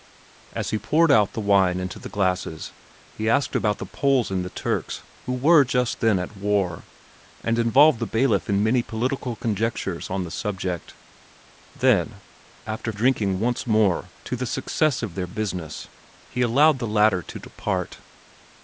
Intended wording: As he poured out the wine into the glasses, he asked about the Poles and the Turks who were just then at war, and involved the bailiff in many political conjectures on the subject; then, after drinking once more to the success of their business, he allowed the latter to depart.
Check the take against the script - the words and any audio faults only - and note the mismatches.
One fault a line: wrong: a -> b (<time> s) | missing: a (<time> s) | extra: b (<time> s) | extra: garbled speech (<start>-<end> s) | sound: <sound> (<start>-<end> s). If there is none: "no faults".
no faults